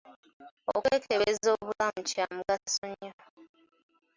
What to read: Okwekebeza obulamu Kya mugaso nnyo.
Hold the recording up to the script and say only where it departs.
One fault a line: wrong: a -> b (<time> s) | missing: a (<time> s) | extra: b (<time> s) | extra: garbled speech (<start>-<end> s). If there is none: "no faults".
no faults